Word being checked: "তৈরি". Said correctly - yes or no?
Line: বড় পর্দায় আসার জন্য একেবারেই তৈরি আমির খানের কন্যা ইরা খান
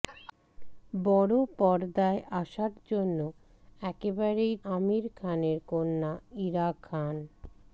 no